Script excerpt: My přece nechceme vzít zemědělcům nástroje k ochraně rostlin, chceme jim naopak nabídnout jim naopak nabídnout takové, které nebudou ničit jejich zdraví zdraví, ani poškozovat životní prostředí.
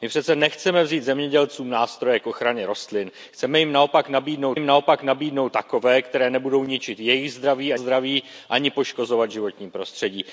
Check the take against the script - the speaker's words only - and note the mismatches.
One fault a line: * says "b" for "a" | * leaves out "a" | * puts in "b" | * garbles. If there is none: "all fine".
all fine